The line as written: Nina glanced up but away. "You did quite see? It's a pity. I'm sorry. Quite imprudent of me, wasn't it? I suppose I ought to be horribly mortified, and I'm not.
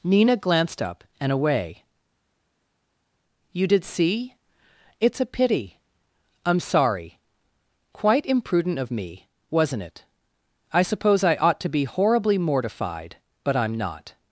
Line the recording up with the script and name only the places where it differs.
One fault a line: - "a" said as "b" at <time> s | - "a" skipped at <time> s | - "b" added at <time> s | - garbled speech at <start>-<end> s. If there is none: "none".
- "but" said as "and" at 1.2 s
- "quite" skipped at 3.8 s
- "and" said as "but" at 13.4 s